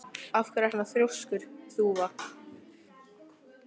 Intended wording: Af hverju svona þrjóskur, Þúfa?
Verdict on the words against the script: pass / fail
pass